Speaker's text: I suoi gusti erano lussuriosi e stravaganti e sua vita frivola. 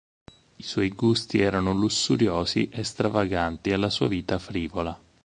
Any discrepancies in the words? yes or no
yes